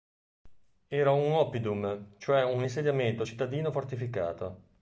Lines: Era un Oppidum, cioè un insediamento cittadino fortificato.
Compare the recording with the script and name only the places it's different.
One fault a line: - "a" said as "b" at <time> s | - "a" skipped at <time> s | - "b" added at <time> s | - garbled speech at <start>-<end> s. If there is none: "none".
none